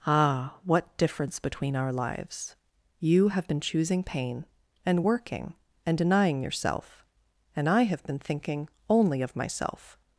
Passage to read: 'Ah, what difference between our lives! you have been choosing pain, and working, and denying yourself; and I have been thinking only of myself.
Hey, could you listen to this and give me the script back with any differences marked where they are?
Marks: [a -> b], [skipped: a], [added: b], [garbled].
'Ah, what difference between our lives! you have been choosing pain, and working, and denying yourself; and I have been thinking only of myself.